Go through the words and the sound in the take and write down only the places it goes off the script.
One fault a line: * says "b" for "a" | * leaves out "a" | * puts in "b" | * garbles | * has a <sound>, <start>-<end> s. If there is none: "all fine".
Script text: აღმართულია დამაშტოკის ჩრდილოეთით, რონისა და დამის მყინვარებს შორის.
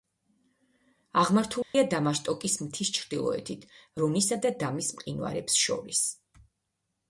* has a dropout, 1.6-1.7 s
* puts in "მთის"